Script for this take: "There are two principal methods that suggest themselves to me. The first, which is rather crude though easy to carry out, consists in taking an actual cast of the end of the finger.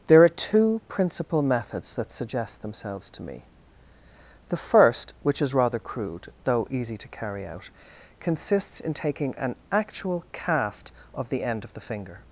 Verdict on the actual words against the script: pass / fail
pass